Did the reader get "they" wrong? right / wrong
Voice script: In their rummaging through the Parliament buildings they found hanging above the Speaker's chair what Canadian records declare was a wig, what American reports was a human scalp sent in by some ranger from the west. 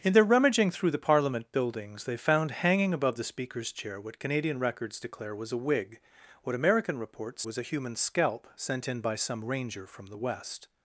right